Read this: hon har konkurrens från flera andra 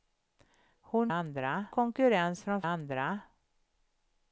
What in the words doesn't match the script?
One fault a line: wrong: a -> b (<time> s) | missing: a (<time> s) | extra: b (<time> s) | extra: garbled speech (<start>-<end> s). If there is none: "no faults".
wrong: har -> andra (1.1 s)
missing: flera (2.6 s)